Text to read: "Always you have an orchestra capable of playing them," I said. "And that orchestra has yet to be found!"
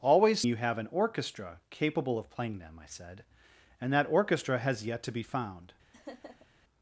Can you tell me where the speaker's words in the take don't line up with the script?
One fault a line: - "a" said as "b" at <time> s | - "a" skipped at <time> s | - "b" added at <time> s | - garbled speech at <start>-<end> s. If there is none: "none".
none